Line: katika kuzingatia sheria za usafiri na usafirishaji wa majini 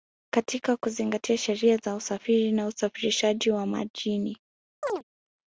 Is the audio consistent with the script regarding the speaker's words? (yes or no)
yes